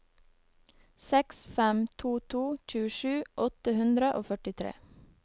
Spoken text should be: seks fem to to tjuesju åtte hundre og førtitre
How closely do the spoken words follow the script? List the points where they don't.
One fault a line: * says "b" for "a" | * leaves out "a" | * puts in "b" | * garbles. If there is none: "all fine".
all fine